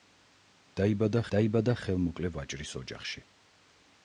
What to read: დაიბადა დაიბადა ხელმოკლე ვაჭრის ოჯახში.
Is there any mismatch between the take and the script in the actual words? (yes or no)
no